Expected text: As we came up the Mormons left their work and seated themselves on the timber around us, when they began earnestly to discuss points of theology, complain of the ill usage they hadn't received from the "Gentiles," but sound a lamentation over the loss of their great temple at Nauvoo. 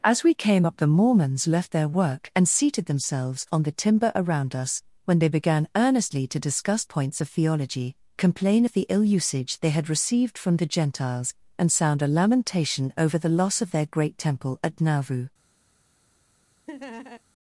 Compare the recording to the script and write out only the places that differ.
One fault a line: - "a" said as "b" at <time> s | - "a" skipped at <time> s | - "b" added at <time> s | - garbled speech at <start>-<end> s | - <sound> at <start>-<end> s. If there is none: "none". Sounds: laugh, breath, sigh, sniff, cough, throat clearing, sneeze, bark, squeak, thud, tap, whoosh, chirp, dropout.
- "hadn't" said as "had" at 9.7 s
- "but" said as "and" at 11.6 s
- laugh at 16.7-17.2 s